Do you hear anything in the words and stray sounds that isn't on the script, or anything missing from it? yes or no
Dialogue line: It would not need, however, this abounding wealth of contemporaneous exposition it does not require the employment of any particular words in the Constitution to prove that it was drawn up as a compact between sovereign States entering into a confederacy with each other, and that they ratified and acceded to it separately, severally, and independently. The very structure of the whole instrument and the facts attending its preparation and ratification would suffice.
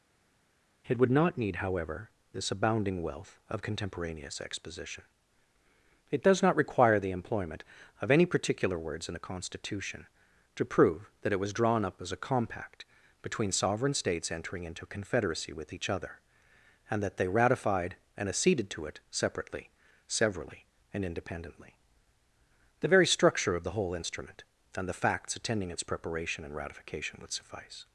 yes